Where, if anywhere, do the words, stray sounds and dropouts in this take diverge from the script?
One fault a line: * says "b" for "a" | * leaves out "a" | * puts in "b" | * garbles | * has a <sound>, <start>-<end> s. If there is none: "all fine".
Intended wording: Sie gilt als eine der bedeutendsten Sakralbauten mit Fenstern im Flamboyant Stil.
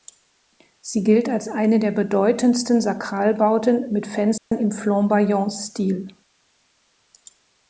* has a dropout, 4.4-4.5 s